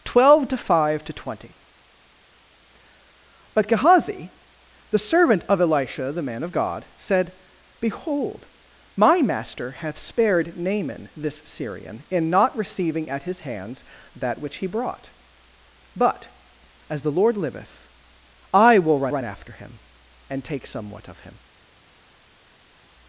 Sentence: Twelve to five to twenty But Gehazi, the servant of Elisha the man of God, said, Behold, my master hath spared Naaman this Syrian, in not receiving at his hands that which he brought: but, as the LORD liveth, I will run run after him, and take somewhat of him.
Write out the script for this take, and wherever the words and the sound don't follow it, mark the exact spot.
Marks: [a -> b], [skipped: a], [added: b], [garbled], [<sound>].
Twelve to five to twenty But Gehazi, the servant of Elisha the man of God, said, Behold, my master hath spared Naaman this Syrian, in not receiving at his hands that which he brought: but, as the LORD liveth, I will run run after him, and take somewhat of him.